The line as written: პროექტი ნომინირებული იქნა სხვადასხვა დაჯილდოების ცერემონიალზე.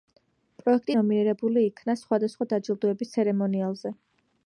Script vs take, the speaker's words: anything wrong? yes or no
no